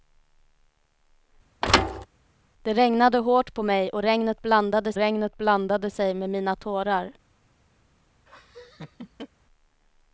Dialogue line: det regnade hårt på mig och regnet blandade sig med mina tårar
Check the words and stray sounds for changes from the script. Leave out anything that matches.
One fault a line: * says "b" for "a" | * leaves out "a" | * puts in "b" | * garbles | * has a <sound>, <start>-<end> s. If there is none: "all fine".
* has a thud, 1.6-2.1 s
* puts in "regnet blandade"
* has a laugh, 8.3-9.3 s